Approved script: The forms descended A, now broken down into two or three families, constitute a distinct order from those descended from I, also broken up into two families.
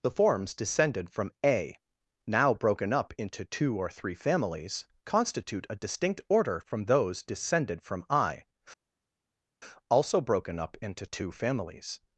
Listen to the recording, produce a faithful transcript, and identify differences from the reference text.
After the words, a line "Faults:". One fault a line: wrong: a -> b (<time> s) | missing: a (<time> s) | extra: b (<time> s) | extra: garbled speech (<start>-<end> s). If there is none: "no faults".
The forms descended from A, now broken up into two or three families, constitute a distinct order from those descended from I, also broken up into two families.
Faults:
extra: from (1.1 s)
wrong: down -> up (2.9 s)